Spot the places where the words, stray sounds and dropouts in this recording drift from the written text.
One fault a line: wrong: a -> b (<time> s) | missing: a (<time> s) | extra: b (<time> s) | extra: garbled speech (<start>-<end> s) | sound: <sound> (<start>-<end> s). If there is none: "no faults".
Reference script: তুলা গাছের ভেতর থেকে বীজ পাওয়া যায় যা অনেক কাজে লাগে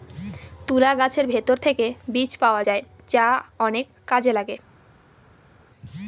no faults